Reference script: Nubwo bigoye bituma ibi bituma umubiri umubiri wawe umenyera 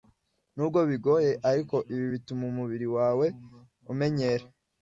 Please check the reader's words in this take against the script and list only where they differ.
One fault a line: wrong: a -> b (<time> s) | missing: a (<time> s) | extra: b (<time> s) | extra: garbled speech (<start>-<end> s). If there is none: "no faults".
wrong: bituma -> ariko (1.5 s)
missing: umubiri (2.9 s)